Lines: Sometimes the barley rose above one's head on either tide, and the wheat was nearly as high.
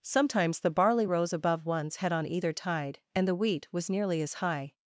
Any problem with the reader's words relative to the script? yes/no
no